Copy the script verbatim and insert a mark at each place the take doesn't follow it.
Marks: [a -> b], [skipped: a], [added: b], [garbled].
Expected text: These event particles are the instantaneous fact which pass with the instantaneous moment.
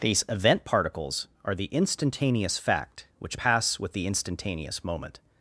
These event particles are the instantaneous fact which pass with the instantaneous moment.